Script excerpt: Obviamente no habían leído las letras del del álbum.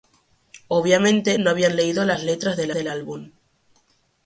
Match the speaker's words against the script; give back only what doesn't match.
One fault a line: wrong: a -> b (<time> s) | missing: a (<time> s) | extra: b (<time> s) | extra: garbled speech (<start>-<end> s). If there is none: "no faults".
no faults